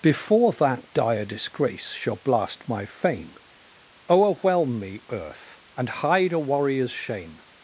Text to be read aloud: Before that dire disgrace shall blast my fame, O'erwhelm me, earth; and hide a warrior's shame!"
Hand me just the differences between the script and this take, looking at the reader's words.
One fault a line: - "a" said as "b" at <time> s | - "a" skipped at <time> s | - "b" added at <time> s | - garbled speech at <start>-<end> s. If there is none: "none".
none